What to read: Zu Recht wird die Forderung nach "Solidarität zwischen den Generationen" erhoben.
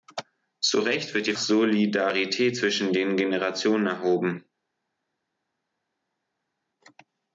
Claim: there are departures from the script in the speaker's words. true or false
true